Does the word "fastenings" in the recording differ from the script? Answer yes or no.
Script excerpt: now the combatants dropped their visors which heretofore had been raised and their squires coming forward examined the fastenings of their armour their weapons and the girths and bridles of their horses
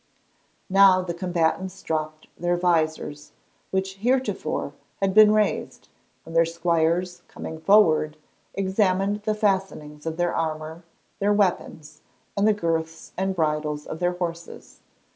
no